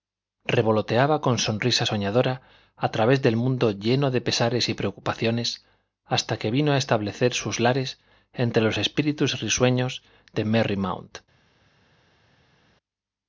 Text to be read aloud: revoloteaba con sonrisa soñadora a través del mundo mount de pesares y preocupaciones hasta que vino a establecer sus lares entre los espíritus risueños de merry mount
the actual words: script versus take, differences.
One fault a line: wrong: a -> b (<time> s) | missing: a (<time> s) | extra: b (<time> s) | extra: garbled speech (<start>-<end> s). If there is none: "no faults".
wrong: mount -> lleno (3.7 s)